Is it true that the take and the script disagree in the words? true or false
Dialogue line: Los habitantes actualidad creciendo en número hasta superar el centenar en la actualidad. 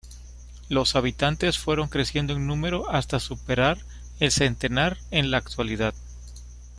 true